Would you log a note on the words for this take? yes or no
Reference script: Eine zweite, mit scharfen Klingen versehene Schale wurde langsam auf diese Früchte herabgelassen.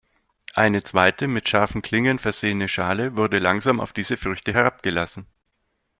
no